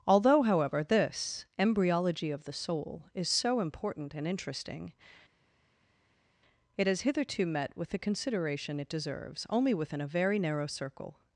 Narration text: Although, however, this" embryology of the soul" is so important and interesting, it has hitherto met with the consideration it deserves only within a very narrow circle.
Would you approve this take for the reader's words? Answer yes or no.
yes